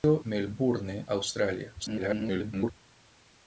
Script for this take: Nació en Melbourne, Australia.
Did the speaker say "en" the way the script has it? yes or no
no